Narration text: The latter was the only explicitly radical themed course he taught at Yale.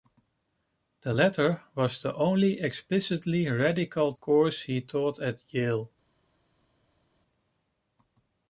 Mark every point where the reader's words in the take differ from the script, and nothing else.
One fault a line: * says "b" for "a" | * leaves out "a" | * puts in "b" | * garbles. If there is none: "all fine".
* leaves out "themed"